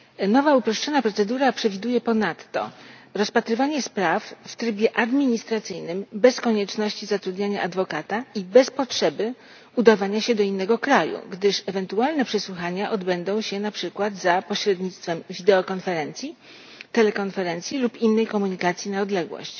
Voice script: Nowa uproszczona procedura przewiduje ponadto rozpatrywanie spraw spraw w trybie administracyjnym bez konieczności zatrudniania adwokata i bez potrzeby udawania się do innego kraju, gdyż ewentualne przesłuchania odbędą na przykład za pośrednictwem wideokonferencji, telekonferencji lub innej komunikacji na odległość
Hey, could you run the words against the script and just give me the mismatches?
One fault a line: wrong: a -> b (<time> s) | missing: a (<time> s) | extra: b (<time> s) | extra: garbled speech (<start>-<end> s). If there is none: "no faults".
missing: spraw (4.3 s)
extra: się (13.4 s)